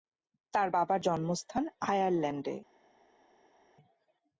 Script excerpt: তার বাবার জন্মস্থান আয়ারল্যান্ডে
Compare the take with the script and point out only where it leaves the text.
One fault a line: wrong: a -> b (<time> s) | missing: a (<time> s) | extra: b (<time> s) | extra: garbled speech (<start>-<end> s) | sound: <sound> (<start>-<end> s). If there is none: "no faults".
no faults